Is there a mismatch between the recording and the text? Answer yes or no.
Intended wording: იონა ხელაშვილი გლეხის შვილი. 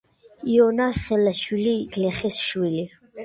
no